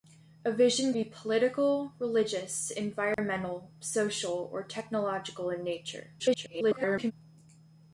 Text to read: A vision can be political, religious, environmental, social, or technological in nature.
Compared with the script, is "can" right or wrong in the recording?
wrong